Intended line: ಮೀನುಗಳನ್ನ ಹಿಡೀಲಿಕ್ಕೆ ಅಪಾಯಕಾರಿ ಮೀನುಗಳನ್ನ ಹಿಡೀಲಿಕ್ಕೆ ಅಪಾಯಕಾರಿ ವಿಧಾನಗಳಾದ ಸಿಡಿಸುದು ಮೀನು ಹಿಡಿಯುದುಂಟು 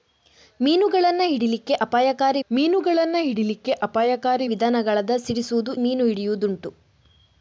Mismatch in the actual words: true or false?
false